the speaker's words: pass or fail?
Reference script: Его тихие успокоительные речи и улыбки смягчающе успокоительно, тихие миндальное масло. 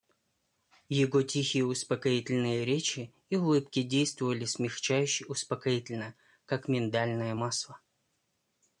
fail